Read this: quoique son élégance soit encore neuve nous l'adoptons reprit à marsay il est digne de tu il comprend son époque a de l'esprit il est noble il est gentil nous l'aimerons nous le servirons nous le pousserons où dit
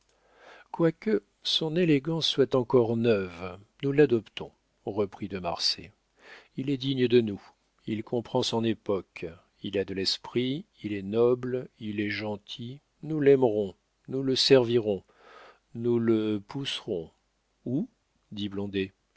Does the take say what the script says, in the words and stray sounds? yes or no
no